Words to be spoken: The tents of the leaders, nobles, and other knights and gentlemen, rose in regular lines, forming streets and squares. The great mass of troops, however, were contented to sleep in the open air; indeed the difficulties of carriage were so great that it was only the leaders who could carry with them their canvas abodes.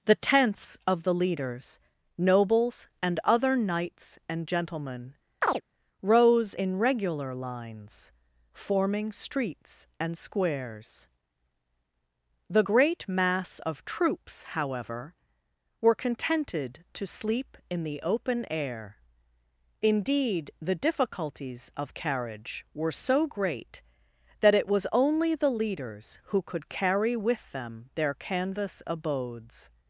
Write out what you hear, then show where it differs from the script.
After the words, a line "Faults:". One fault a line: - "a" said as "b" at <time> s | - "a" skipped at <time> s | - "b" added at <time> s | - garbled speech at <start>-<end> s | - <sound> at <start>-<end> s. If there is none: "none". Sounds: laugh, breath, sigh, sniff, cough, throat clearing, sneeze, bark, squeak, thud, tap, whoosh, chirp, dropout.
The tents of the leaders, nobles, and other knights and gentlemen, rose in regular lines, forming streets and squares. The great mass of troops, however, were contented to sleep in the open air; indeed the difficulties of carriage were so great that it was only the leaders who could carry with them their canvas abodes.
Faults:
- chirp at 5.4-5.6 s